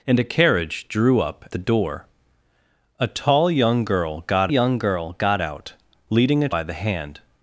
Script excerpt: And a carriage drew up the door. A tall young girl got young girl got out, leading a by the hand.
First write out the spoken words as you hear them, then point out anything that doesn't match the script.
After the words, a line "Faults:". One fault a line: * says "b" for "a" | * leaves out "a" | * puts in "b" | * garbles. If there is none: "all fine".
And a carriage drew up the door. A tall young girl got young girl got out, leading a by the hand.
Faults:
all fine